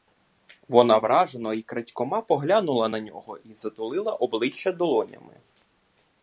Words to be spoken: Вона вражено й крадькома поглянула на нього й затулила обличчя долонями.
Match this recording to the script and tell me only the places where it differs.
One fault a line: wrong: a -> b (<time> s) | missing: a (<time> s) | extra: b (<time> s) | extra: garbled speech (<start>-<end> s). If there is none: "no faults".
no faults